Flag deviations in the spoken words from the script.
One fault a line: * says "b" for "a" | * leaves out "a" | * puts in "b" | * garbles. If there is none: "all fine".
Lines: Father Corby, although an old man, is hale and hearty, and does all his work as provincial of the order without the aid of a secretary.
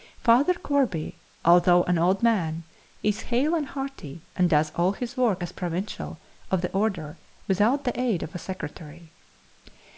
all fine